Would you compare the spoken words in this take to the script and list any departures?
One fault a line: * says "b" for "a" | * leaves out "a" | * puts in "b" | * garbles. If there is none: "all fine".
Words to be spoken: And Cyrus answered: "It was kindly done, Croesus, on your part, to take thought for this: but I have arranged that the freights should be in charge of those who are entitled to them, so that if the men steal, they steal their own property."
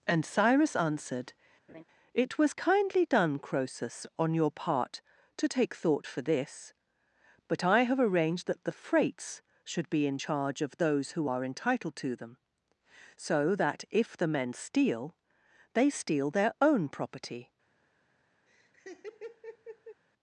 all fine